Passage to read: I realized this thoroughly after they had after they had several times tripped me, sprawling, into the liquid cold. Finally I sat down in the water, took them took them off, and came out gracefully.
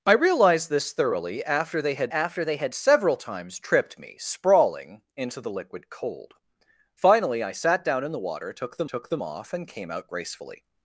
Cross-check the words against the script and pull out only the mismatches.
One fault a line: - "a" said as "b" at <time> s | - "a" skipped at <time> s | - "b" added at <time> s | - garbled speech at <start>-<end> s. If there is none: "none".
none